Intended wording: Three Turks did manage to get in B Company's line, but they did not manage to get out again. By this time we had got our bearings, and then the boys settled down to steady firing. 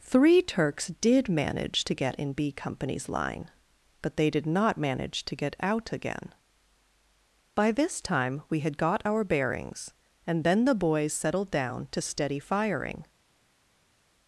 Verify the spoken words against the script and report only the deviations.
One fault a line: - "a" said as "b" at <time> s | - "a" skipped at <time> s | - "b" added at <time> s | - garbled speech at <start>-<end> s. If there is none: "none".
none